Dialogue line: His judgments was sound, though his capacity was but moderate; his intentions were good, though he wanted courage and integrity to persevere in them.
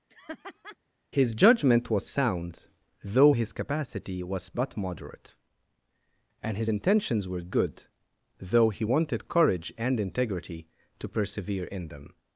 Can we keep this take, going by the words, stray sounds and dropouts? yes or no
no